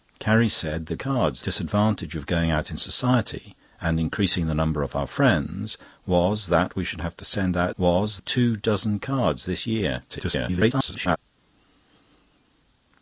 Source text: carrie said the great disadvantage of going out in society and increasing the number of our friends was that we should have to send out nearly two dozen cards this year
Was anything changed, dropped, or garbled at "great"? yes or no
yes